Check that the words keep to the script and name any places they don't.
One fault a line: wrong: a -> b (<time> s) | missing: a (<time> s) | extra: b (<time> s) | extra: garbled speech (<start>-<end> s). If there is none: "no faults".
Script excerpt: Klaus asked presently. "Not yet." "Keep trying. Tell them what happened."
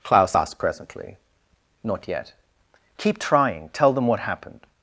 no faults